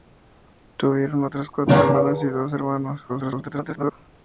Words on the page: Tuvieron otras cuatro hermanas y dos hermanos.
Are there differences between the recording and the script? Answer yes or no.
yes